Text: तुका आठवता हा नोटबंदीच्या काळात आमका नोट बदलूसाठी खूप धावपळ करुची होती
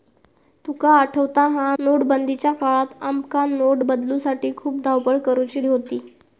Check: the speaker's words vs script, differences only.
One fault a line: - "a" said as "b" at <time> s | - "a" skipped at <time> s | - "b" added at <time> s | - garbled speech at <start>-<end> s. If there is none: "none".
none